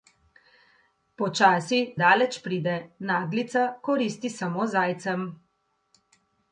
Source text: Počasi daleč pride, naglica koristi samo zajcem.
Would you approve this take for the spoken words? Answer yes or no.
yes